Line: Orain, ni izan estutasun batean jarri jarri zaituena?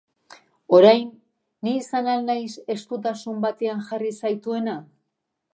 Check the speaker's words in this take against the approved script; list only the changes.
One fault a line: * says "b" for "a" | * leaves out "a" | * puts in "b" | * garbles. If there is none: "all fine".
* puts in "al naiz"
* leaves out "jarri"